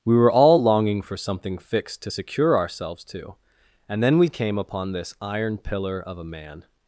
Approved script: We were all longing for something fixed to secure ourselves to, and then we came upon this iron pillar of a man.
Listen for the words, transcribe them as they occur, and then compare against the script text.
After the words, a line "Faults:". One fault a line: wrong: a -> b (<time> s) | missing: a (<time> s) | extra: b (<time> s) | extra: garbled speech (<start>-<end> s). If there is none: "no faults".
We were all longing for something fixed to secure ourselves to, and then we came upon this iron pillar of a man.
Faults:
no faults